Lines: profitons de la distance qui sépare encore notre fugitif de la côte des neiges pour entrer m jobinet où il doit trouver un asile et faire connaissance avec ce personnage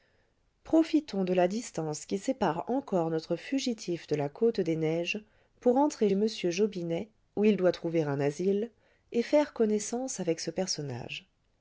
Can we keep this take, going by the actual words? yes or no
yes